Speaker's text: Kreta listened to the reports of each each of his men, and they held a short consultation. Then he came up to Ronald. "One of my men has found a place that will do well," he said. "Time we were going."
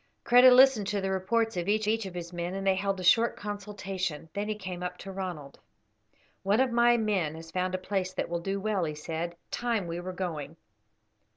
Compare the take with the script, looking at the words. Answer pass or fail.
pass